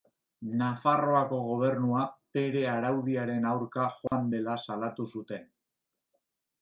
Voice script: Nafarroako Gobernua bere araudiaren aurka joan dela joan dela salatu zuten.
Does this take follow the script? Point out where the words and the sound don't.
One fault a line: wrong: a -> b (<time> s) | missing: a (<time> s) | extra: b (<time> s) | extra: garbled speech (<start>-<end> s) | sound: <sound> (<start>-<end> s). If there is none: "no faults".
sound: dropout (4.1-4.1 s)
missing: joan dela (4.6 s)